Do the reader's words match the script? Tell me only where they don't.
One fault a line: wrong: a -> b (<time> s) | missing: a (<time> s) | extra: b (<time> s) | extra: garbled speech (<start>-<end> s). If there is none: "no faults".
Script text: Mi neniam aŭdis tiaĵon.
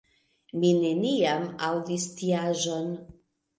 no faults